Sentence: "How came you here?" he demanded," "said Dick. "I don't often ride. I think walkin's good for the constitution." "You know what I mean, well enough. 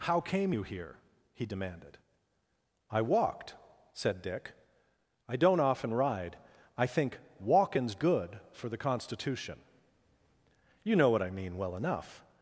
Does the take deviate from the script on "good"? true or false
false